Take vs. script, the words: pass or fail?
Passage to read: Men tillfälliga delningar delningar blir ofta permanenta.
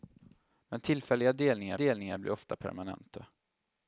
pass